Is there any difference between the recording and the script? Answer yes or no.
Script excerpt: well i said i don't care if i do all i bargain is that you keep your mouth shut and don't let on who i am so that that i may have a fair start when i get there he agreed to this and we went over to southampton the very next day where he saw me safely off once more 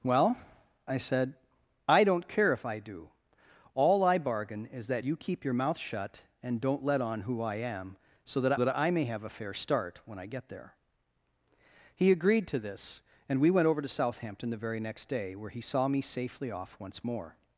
no